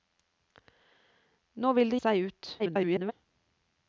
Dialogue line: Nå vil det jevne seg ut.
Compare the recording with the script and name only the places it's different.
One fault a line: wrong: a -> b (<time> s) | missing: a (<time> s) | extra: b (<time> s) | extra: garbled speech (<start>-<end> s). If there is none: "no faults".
missing: jevne (2.0 s)
extra: garbled speech (2.6-3.1 s)